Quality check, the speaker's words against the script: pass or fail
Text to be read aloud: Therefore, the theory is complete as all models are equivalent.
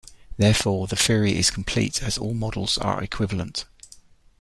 pass